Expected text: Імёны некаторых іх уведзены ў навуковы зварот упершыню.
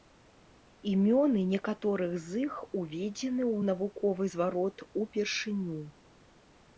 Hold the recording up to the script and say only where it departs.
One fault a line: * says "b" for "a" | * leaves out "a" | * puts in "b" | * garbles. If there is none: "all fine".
* puts in "з"